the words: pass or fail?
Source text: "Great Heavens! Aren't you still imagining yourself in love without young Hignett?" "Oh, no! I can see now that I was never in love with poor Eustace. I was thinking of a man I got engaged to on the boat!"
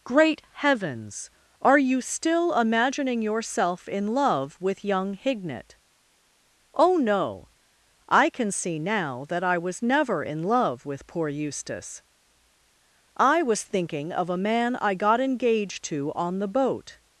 fail